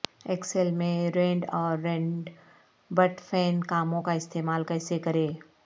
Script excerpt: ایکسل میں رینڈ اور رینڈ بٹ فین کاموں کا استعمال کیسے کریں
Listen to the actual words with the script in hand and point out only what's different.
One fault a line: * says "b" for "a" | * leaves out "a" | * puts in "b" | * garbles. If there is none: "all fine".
all fine